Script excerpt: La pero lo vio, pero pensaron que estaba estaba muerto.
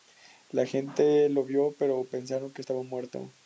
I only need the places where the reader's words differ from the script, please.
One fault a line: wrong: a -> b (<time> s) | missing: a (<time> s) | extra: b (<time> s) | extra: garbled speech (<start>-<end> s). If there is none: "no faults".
wrong: pero -> gente (0.7 s)
missing: estaba (2.8 s)